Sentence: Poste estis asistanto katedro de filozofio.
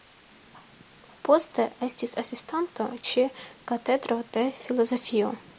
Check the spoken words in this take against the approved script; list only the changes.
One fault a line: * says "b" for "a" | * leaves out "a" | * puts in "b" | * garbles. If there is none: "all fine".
* puts in "ĉe"